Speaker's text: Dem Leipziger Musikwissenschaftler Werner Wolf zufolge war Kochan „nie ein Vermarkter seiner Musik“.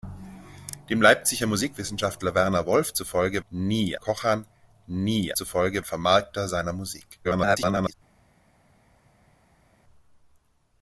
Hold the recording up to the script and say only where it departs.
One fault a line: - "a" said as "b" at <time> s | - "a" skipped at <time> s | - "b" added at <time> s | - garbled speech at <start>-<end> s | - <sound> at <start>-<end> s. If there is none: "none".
- "war" said as "nie" at 3.5 s
- "ein" said as "zufolge" at 5.3 s
- garbled speech at 7.2-7.9 s